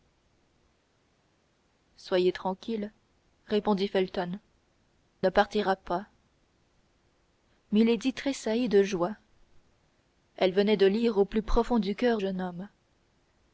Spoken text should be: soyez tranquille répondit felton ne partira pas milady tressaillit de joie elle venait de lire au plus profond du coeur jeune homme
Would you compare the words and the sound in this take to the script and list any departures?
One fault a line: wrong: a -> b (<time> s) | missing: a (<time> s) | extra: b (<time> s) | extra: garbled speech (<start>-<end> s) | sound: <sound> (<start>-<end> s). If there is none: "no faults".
no faults